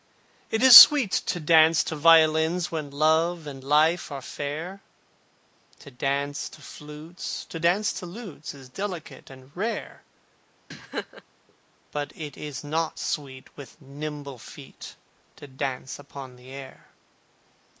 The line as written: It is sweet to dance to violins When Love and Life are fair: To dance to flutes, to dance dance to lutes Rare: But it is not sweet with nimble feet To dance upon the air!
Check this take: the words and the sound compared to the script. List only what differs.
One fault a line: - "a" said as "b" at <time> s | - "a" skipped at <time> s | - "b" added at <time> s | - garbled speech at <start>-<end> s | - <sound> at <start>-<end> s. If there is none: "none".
- "dance" skipped at 7.9 s
- "Is delicate and" added at 8.5 s
- laugh at 10.7-11.2 s